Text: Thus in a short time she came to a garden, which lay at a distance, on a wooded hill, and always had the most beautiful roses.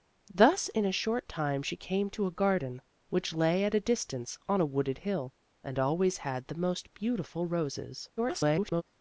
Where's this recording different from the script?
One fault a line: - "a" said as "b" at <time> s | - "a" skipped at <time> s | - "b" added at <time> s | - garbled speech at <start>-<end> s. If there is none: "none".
- garbled speech at 8.2-8.8 s